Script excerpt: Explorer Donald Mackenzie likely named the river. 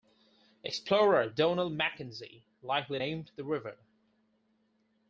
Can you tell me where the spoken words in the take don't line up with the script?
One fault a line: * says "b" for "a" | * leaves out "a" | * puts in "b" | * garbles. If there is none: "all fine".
all fine